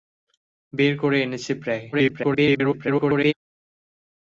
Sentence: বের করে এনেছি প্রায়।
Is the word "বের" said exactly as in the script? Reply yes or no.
yes